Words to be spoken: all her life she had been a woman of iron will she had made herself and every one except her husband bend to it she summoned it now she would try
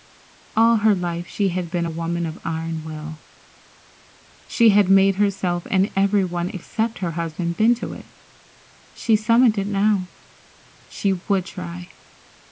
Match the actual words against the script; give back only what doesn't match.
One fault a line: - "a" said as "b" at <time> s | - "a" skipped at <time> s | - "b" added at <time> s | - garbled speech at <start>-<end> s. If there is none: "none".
none